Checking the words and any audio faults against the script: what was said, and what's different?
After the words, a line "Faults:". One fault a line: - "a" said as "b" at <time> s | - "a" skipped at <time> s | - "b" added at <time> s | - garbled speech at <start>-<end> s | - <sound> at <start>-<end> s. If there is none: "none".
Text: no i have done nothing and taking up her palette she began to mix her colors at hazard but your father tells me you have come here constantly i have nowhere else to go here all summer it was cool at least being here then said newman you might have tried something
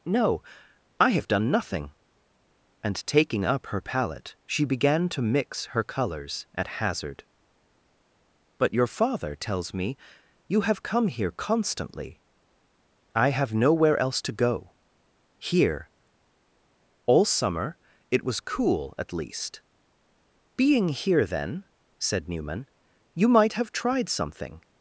no i have done nothing and taking up her palette she began to mix her colors at hazard but your father tells me you have come here constantly i have nowhere else to go here all summer it was cool at least being here then said newman you might have tried something
Faults:
none